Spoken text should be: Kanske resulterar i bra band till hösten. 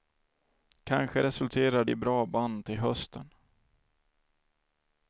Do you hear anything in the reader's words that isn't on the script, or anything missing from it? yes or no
no